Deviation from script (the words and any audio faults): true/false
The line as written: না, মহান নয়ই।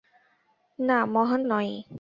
false